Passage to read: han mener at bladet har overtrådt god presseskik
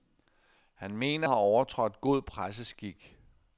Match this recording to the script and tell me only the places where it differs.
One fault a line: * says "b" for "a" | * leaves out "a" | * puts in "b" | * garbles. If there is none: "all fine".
* leaves out "at bladet"